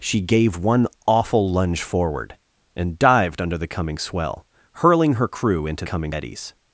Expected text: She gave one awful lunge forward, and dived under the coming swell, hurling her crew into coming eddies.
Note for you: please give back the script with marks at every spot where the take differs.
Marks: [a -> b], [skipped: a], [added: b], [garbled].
She gave one awful lunge forward, and dived under the coming swell, hurling her crew into coming eddies.